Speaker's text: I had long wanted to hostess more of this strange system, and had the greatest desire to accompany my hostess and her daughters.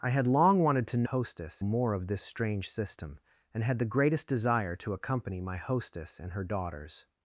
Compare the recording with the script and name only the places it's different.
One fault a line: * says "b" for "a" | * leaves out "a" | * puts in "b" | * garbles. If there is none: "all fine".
all fine